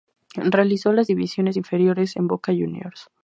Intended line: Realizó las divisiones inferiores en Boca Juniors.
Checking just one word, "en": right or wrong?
right